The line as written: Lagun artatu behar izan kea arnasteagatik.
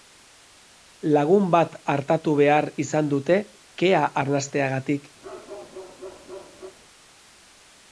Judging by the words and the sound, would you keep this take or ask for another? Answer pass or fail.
fail